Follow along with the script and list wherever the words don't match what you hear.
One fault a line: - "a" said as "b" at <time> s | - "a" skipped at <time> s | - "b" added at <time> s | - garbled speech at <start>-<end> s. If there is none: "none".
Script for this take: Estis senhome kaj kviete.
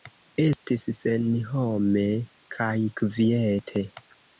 none